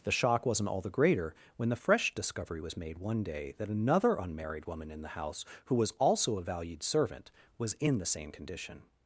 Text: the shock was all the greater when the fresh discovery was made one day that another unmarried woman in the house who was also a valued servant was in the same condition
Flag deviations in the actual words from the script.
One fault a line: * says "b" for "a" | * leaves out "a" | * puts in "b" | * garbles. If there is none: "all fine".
* says "wasn't" for "was"